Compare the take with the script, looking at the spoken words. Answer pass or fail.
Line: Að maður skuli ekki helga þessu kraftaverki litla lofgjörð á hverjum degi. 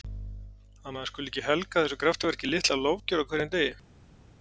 pass